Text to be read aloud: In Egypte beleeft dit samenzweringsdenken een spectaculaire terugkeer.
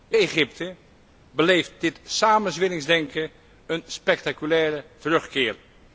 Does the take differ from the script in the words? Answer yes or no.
no